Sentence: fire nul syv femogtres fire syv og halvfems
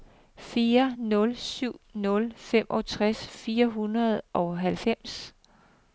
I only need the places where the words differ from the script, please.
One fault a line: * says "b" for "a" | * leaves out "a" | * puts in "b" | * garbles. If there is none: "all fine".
* puts in "nul"
* says "hundrede" for "syv"